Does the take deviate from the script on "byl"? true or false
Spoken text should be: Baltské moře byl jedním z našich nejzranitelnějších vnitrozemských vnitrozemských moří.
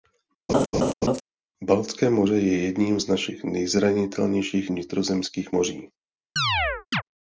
true